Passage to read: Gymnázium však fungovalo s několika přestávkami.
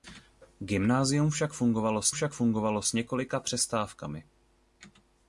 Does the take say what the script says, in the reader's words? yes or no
no